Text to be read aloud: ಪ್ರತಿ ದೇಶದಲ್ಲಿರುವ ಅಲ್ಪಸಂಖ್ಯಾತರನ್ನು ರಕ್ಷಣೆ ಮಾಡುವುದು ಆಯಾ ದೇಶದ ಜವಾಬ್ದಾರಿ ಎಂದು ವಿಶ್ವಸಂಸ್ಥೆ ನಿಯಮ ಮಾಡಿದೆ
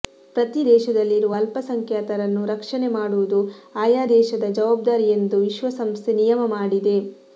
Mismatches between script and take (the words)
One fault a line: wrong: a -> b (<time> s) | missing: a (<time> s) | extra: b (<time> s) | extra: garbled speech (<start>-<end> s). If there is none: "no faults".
no faults